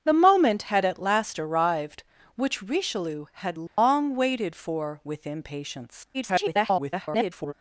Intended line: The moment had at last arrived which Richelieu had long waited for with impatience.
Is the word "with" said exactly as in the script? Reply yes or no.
yes